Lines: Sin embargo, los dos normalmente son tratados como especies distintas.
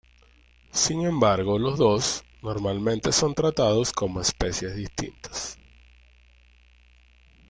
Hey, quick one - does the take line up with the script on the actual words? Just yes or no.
yes